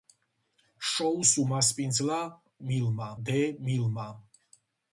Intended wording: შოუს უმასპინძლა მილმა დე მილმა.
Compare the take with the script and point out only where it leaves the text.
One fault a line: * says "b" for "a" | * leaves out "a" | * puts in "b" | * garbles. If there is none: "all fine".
all fine